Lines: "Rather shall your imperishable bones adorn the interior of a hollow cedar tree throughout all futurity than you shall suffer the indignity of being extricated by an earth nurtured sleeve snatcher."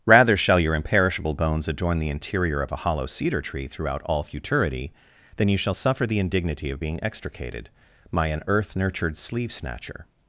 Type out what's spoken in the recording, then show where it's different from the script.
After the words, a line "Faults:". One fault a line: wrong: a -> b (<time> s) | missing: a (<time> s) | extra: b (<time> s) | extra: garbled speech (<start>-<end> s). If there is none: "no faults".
"Rather shall your imperishable bones adorn the interior of a hollow cedar tree throughout all futurity than you shall suffer the indignity of being extricated my an earth nurtured sleeve snatcher."
Faults:
wrong: by -> my (8.1 s)